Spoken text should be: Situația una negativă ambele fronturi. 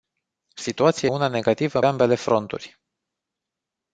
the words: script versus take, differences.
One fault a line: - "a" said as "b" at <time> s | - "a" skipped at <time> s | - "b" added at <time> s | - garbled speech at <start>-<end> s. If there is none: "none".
none